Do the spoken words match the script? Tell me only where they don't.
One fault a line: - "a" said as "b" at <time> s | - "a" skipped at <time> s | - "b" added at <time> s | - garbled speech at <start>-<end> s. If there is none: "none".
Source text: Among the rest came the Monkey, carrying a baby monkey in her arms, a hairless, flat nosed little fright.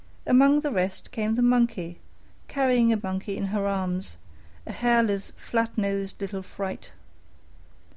- "baby" skipped at 3.0 s